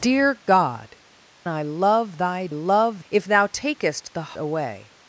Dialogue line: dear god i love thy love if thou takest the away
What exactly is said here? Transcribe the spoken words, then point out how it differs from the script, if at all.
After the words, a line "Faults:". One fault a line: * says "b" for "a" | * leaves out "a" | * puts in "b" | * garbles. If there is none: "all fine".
dear god i love thy love if thou takest the away
Faults:
all fine